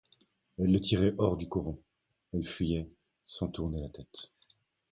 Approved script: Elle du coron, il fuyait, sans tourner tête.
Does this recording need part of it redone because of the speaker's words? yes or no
yes